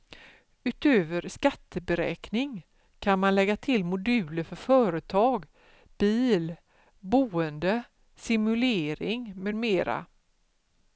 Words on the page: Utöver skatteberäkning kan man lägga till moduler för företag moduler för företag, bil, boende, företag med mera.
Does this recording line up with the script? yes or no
no